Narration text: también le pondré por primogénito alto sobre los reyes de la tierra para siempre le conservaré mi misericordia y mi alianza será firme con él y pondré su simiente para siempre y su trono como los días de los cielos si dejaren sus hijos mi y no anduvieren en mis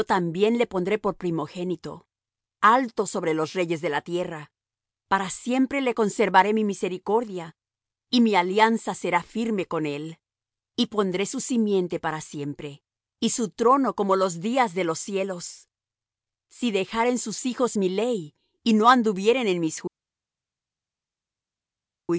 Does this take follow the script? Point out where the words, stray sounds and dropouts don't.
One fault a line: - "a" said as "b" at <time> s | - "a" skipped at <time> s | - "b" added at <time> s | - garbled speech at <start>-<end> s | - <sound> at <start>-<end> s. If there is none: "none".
- "ley" added at 17.9 s